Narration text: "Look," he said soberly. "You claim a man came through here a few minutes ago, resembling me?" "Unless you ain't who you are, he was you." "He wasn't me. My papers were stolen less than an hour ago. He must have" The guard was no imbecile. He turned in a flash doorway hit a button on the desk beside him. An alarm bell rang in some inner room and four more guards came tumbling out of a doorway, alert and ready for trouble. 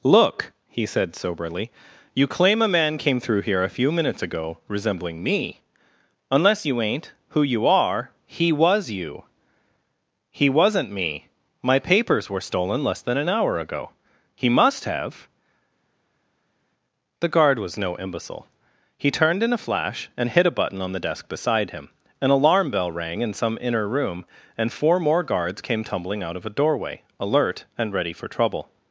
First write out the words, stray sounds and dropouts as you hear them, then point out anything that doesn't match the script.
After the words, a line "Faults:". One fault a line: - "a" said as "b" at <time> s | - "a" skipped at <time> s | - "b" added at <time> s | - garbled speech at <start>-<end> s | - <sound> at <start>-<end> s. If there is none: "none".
"Look," he said soberly. "You claim a man came through here a few minutes ago, resembling me?" "Unless you ain't who you are, he was you." "He wasn't me. My papers were stolen less than an hour ago. He must have" The guard was no imbecile. He turned in a flash and hit a button on the desk beside him. An alarm bell rang in some inner room and four more guards came tumbling out of a doorway, alert and ready for trouble.
Faults:
- "doorway" said as "and" at 20.2 s